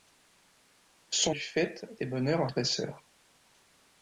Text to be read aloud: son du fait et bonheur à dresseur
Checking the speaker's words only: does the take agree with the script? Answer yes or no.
yes